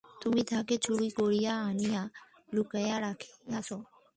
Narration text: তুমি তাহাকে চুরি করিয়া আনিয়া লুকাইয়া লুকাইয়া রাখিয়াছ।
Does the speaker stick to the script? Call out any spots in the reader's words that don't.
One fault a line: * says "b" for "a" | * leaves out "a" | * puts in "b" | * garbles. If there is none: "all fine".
* leaves out "লুকাইয়া"